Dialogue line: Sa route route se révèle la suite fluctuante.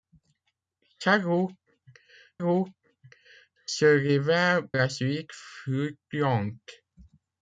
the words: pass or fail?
pass